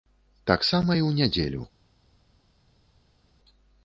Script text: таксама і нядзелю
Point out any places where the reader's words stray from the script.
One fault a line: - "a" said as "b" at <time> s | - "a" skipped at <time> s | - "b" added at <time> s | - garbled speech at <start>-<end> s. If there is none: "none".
- "ў" added at 1.1 s